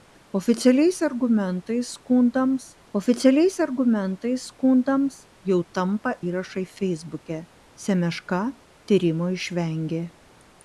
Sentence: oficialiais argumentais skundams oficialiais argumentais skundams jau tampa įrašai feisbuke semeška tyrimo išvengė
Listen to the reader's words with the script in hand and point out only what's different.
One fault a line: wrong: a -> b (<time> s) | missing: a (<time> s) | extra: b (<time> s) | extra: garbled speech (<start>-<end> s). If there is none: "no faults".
no faults